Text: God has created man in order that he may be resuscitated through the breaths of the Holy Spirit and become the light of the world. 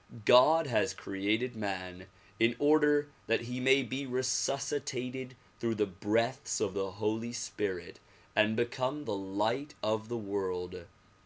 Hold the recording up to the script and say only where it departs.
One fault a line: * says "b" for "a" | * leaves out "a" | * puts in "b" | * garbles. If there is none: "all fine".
all fine